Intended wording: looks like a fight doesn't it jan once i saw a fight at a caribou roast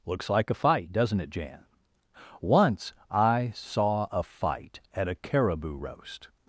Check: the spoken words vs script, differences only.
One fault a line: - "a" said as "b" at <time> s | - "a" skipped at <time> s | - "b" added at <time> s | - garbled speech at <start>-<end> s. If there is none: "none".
none